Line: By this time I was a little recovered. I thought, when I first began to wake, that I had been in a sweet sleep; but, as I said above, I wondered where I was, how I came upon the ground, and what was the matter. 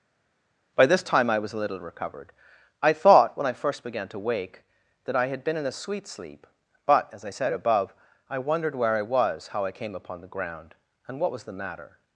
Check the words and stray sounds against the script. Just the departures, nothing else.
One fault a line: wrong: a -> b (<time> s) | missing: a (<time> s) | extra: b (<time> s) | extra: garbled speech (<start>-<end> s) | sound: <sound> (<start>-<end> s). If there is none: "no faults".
no faults